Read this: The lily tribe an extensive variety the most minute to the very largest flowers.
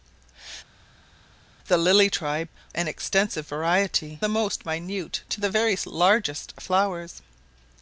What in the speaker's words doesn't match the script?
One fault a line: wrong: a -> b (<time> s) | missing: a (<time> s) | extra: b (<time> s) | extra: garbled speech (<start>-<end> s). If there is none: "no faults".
no faults